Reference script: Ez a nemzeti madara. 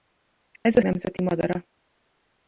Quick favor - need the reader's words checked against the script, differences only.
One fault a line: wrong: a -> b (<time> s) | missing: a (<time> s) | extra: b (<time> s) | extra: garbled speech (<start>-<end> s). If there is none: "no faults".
no faults